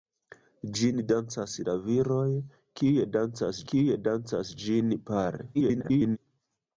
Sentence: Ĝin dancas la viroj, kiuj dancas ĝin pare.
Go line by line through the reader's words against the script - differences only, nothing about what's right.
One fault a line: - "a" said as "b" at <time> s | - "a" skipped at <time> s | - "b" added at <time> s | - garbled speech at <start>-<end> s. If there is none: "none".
- "kiuj dancas" added at 3.7 s
- garbled speech at 5.5-6.2 s